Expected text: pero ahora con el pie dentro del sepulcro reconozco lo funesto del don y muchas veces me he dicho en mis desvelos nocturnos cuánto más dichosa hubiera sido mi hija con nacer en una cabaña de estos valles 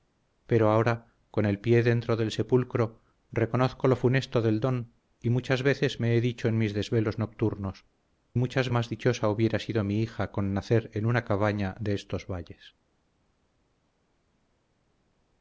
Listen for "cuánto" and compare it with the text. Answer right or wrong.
wrong